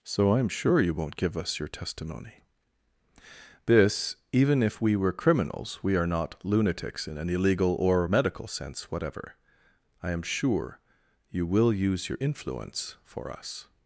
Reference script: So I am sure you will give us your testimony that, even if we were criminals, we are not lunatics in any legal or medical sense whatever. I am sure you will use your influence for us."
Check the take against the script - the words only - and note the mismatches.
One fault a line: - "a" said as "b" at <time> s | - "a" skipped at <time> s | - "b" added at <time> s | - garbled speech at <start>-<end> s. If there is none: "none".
- "will" said as "won't" at 0.9 s
- "that" said as "this" at 3.6 s